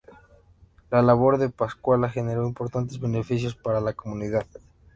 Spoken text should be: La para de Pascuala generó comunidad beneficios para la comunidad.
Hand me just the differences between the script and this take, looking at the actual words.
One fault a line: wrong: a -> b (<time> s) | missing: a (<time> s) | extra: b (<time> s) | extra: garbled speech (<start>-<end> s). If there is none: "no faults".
wrong: para -> labor (1.0 s)
wrong: comunidad -> importantes (2.5 s)